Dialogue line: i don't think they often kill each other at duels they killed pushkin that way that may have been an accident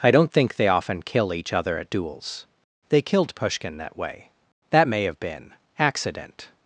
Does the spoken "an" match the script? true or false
false